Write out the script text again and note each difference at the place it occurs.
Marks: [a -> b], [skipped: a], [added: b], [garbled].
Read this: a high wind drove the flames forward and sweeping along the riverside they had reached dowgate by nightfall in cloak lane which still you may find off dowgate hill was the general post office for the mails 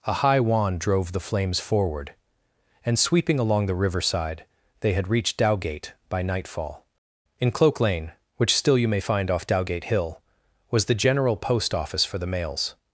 a high [wind -> wand] drove the flames forward and sweeping along the riverside they had reached dowgate by nightfall in cloak lane which still you may find off dowgate hill was the general post office for the mails